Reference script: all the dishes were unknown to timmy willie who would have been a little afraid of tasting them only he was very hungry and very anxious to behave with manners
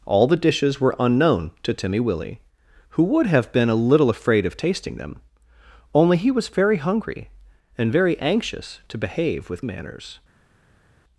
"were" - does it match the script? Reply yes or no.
yes